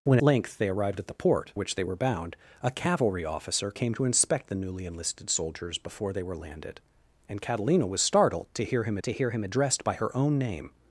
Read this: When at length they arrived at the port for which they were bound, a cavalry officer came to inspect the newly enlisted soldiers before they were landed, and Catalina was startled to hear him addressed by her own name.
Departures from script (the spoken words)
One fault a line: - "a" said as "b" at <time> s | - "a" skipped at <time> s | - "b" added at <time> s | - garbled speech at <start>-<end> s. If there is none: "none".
- "at" skipped at 0.2 s
- "for" skipped at 1.5 s
- "to hear him" added at 9.0 s